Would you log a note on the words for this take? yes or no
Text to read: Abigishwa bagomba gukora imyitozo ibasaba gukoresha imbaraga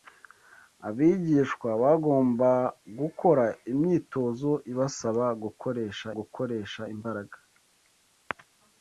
yes